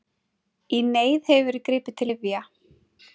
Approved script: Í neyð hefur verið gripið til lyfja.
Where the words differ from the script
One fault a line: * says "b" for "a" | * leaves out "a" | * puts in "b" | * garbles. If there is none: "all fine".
all fine